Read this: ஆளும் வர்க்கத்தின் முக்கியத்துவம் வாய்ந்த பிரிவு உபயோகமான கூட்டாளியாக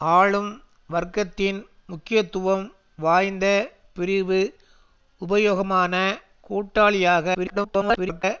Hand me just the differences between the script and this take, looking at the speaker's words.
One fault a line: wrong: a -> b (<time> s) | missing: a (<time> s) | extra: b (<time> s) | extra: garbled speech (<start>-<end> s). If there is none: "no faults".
extra: garbled speech (7.3-8.2 s)